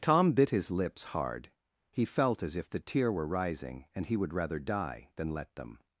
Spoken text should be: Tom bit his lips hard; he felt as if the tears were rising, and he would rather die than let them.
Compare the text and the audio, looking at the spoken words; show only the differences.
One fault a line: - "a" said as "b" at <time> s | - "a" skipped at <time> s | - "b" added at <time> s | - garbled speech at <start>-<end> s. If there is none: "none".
- "tears" said as "tear" at 2.8 s